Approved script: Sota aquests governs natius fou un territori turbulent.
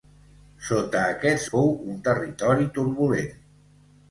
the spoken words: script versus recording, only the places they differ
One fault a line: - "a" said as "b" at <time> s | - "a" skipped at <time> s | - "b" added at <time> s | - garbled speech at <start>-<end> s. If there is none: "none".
- "governs natius" skipped at 1.4 s